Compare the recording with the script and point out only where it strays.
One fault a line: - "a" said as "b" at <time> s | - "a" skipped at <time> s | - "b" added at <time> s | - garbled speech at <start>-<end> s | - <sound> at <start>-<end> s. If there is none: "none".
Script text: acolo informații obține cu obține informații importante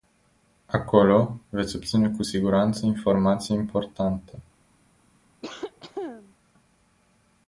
- "informații" said as "veți" at 1.5 s
- "obține" said as "siguranță" at 2.2 s
- cough at 5.4-6.3 s